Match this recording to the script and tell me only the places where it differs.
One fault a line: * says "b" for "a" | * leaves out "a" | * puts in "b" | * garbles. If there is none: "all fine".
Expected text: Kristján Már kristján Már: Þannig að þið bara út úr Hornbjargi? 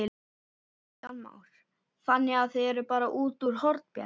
* leaves out "kristján Már"
* puts in "eruð"